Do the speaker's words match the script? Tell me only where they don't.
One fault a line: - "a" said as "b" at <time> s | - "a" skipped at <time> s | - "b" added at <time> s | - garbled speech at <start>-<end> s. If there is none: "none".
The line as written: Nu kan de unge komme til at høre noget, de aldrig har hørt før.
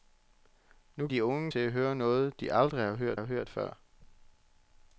- "kan" skipped at 1.1 s
- "komme" skipped at 1.5 s
- "har hørt" added at 3.1 s